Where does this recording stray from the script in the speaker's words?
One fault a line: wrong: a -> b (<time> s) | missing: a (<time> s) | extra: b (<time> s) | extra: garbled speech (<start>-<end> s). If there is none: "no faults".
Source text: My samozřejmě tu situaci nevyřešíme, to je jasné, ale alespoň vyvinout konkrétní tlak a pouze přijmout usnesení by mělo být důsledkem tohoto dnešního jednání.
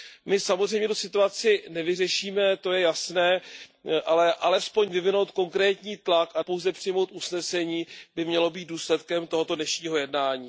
no faults